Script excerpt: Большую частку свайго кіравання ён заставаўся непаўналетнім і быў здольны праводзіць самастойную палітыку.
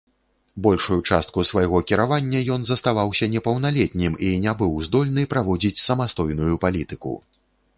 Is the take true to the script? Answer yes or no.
no